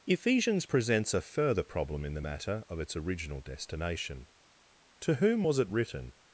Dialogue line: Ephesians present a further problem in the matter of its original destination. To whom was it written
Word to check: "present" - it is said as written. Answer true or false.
false